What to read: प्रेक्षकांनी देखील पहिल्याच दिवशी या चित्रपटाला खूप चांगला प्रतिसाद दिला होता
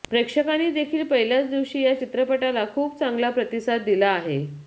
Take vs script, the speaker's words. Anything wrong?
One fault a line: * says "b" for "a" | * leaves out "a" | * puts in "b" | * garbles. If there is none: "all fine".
* says "आहे" for "होता"